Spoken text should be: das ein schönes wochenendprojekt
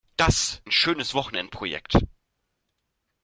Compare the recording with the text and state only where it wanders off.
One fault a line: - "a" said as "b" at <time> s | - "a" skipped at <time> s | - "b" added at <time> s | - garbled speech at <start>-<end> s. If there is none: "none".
none